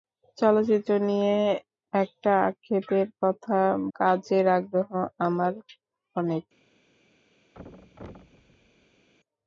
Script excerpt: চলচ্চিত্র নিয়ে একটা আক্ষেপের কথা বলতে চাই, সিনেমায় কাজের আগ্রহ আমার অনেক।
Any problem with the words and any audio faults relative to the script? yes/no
yes